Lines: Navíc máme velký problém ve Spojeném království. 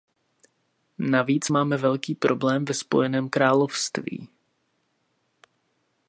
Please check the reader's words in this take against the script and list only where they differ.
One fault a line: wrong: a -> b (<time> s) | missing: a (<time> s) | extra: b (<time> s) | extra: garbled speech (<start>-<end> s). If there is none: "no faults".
no faults